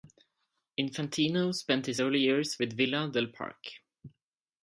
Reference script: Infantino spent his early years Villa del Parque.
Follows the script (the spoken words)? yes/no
no